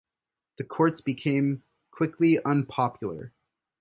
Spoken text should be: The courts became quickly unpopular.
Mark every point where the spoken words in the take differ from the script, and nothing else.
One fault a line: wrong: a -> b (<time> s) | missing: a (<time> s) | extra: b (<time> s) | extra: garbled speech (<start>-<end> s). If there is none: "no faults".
no faults